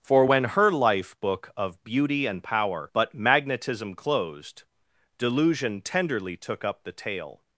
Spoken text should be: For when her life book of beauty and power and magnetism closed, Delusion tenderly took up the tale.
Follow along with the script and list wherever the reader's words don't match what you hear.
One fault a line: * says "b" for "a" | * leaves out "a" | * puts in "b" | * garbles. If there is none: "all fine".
* says "but" for "and"